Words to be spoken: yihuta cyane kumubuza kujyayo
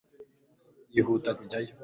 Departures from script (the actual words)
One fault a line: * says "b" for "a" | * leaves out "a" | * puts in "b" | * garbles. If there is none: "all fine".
* leaves out "cyane kumubuza"